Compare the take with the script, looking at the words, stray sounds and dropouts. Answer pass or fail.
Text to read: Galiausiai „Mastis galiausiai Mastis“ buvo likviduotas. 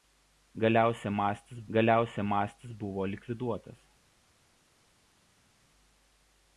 pass